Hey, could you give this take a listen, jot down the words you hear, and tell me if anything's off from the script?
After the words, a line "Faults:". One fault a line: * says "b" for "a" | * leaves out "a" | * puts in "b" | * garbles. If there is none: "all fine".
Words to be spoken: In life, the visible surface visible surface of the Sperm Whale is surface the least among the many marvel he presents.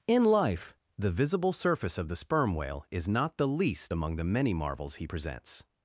In life, the visible surface of the Sperm Whale is not the least among the many marvels he presents.
Faults:
* leaves out "visible surface"
* says "not" for "surface"
* says "marvels" for "marvel"